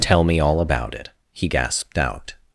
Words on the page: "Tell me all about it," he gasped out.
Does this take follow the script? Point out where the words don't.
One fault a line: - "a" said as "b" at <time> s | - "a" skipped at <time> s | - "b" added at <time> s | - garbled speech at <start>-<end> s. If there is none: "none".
none